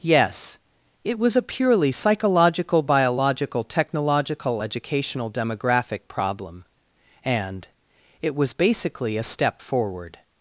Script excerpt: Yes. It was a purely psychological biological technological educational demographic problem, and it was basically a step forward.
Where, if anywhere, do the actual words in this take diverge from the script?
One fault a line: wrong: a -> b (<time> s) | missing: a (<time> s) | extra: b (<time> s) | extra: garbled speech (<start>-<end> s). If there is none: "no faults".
no faults